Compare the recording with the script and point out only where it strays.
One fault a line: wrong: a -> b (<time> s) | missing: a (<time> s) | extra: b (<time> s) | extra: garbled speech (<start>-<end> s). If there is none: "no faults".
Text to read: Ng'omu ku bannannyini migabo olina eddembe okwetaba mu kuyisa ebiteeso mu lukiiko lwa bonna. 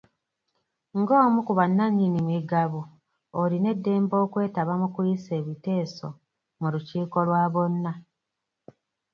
no faults